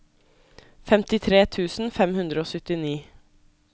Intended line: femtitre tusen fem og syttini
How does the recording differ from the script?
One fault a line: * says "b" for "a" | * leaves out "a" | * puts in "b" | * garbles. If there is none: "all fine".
* puts in "hundre"